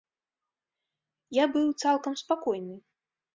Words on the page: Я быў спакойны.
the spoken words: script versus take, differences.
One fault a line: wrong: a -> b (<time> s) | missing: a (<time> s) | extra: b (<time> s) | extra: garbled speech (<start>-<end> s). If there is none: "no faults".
extra: цалкам (1.9 s)